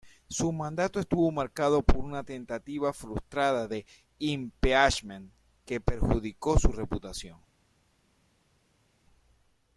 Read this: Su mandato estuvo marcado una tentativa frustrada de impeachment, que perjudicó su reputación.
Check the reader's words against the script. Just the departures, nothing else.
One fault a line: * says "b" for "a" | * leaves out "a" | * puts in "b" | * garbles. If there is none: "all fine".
* puts in "por"